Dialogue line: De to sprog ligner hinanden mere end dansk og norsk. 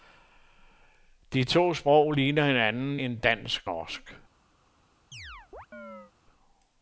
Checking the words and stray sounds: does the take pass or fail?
fail